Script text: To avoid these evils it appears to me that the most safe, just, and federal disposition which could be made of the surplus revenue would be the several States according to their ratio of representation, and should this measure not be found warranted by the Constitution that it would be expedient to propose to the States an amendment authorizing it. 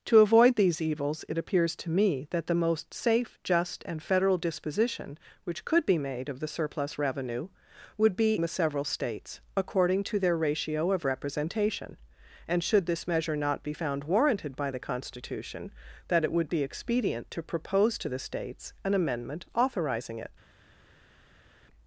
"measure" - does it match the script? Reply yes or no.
yes